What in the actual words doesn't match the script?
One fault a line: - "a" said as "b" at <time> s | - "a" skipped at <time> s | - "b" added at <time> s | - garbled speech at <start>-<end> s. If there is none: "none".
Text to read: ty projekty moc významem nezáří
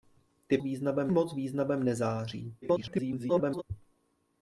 - "projekty" said as "významem" at 0.6 s
- garbled speech at 2.6-3.6 s